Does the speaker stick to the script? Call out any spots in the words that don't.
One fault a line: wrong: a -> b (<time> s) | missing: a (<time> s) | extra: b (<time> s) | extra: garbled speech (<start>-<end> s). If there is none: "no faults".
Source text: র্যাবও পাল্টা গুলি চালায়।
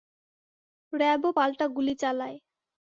no faults